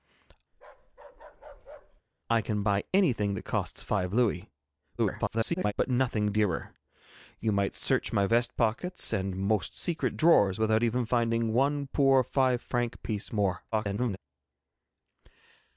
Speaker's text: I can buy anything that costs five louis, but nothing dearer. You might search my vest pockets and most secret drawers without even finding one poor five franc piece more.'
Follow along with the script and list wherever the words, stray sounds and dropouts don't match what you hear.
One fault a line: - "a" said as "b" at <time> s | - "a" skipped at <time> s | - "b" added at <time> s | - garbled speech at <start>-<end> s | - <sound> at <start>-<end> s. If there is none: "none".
- bark at 0.5-2.0 s
- garbled speech at 5.0-5.7 s
- garbled speech at 13.7-14.2 s